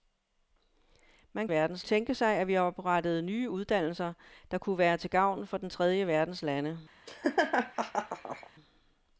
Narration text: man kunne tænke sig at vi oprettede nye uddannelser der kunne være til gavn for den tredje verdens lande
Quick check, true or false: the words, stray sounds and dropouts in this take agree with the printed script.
false